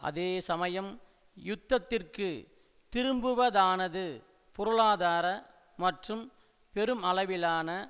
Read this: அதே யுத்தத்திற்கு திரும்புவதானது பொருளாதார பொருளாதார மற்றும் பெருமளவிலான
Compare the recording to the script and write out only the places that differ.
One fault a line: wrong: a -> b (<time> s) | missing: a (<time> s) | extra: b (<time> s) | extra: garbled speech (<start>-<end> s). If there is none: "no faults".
extra: சமயம் (0.5 s)
missing: பொருளாதார (5.3 s)